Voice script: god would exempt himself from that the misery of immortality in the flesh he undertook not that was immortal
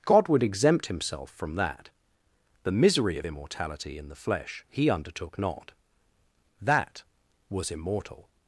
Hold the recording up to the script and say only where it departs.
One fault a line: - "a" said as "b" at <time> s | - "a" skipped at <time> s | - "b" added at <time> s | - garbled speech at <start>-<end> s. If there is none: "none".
none